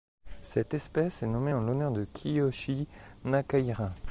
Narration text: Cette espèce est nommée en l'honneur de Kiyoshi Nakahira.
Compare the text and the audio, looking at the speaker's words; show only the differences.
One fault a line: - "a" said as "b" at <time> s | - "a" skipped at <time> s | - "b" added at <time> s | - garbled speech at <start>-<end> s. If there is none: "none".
none